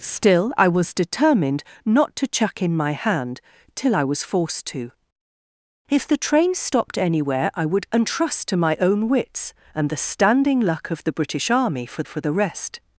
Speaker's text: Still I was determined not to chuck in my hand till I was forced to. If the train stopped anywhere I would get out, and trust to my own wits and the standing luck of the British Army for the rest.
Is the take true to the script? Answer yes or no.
no